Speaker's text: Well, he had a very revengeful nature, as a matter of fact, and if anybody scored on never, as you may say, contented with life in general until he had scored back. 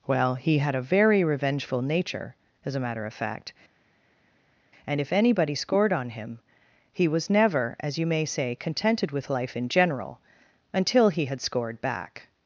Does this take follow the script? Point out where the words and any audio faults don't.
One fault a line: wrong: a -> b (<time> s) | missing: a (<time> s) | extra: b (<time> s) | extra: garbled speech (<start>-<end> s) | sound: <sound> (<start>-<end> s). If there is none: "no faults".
extra: him he was (6.1 s)